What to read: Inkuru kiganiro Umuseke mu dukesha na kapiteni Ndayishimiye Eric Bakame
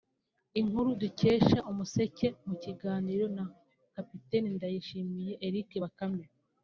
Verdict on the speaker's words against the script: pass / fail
fail